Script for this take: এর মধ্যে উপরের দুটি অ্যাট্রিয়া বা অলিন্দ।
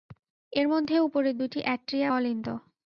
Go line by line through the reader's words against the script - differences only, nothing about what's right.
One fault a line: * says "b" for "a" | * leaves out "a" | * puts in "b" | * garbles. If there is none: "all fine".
* leaves out "বা"